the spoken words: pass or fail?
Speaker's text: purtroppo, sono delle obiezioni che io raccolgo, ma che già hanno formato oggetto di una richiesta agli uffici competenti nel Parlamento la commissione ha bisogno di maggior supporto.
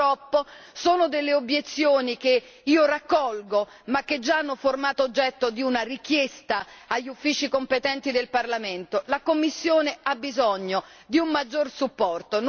fail